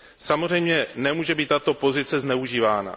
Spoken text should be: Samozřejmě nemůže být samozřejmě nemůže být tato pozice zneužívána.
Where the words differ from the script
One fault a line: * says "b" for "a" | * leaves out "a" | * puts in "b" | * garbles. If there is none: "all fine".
* leaves out "samozřejmě nemůže být"